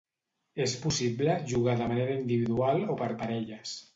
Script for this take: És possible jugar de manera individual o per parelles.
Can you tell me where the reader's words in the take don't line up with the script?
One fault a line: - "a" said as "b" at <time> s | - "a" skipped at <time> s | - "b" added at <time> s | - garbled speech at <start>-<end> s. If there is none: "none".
none